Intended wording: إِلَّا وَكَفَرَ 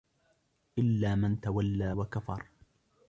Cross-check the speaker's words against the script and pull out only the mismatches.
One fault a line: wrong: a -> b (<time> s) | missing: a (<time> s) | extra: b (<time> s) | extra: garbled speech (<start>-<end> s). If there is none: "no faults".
extra: مَنْ تَوَلَّى (1.1 s)